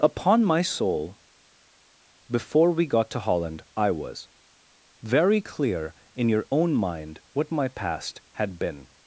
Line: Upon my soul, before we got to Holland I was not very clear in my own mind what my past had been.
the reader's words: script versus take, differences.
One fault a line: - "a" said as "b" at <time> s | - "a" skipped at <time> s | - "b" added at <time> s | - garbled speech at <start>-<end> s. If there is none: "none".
- "not" skipped at 4.3 s
- "my" said as "your" at 6.3 s